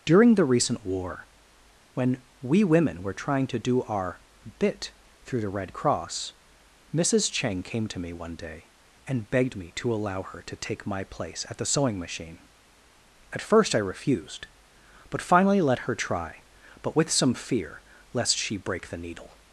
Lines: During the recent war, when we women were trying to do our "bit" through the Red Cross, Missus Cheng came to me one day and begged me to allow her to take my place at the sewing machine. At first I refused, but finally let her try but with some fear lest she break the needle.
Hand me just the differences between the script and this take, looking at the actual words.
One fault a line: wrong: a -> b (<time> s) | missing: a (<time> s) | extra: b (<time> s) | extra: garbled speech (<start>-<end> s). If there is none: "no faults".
no faults